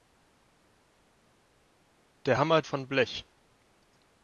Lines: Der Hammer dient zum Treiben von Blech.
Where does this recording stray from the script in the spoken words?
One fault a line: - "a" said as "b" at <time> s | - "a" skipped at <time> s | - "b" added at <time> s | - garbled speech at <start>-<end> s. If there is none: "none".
- "dient zum Treiben" skipped at 2.6 s